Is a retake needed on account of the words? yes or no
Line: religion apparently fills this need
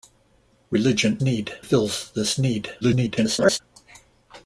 yes